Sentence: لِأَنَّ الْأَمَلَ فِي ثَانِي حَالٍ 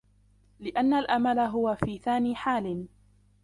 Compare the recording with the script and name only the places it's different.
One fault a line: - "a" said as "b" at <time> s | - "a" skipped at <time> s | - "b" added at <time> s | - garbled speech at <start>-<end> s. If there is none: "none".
- "هُوَ" added at 1.4 s